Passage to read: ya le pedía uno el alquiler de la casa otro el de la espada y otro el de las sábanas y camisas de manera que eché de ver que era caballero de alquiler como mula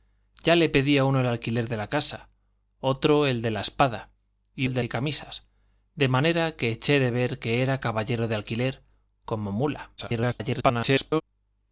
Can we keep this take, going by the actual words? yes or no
no